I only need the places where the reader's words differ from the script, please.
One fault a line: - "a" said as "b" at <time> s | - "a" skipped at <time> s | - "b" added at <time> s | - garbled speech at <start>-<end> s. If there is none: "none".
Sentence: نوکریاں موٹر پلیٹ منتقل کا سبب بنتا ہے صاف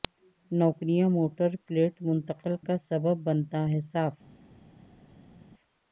none